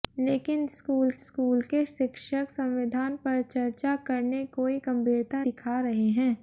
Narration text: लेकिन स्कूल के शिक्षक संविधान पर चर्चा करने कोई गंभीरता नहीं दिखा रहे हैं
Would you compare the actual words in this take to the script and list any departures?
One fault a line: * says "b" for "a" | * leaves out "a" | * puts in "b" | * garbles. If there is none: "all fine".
* puts in "स्कूल"
* leaves out "नहीं"